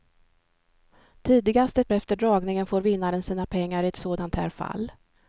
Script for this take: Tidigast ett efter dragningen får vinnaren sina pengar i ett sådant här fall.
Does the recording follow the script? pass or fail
pass